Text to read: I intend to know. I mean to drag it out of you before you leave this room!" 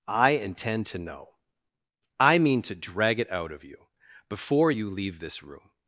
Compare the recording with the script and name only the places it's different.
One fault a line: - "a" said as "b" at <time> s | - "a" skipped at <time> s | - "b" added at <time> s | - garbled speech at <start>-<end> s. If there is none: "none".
none